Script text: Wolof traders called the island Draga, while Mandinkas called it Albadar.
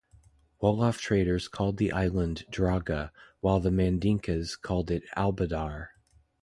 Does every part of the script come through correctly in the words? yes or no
no